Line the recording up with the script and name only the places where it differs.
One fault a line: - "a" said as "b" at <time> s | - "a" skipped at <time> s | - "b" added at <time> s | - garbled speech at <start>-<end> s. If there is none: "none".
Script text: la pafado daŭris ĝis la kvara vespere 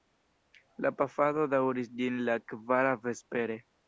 none